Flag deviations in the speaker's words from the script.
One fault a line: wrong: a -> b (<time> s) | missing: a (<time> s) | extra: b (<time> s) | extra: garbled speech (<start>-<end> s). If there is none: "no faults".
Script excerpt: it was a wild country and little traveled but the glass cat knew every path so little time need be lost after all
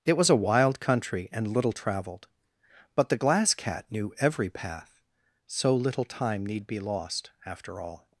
no faults